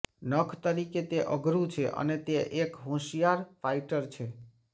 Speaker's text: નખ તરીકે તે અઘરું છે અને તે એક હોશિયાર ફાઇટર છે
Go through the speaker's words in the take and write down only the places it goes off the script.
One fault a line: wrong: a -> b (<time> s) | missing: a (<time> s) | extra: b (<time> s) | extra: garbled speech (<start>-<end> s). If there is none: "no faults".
no faults